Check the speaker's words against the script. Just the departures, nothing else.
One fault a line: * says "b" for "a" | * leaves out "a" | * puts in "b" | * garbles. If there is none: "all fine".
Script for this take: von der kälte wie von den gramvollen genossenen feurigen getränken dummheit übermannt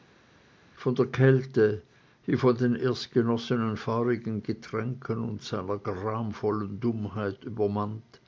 * says "erst" for "gramvollen"
* puts in "und seiner gramvollen"